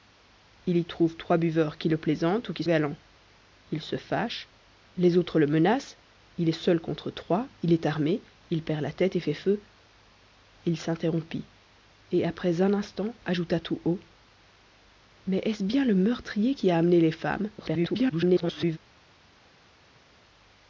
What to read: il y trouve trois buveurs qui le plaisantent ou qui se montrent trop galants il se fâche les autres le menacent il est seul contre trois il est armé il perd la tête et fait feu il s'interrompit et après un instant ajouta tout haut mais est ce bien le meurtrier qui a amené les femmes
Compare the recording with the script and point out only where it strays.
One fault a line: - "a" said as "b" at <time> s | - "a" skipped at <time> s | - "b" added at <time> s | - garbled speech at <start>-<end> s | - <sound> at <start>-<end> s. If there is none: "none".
- "se montrent trop" skipped at 2.6 s
- garbled speech at 17.6-18.8 s